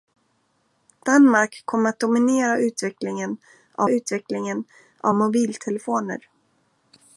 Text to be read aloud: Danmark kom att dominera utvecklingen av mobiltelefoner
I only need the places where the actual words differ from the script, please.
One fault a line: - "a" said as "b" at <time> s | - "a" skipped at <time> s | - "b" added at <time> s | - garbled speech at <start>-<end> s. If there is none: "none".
- "utvecklingen av" added at 3.9 s